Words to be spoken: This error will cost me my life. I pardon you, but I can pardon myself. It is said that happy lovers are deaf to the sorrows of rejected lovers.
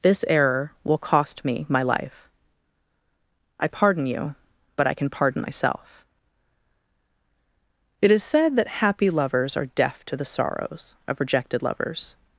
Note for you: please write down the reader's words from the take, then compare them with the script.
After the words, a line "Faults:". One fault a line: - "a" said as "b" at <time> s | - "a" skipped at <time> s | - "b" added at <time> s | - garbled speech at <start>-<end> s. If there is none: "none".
This error will cost me my life. I pardon you, but I can pardon myself. It is said that happy lovers are deaf to the sorrows of rejected lovers.
Faults:
none